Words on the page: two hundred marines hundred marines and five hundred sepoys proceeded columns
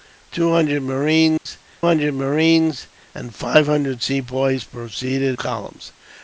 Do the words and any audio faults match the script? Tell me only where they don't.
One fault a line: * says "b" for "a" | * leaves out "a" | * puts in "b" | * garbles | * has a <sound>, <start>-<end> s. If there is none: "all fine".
* has a dropout, 1.4-1.5 s